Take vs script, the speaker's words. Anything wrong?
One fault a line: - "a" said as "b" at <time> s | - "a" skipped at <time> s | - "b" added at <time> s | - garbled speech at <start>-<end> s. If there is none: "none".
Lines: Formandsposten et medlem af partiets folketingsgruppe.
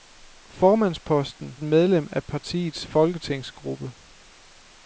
none